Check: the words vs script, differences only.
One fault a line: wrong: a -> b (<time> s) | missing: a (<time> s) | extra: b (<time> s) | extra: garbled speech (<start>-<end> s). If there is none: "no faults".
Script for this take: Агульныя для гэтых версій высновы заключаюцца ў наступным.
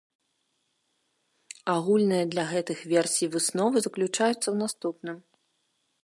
no faults